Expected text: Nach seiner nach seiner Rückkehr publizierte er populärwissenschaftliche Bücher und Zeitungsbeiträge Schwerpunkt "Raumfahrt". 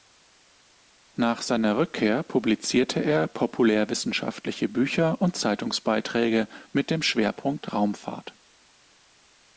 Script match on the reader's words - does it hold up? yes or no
no